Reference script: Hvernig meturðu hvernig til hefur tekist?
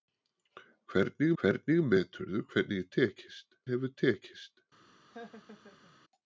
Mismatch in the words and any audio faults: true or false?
true